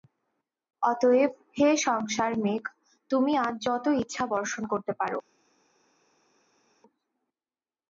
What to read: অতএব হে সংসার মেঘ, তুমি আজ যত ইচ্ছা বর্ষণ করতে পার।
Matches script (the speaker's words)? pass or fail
pass